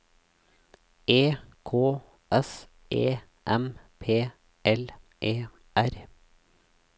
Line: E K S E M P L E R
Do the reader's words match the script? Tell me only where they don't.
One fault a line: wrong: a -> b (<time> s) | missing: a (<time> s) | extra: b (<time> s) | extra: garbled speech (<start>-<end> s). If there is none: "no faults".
no faults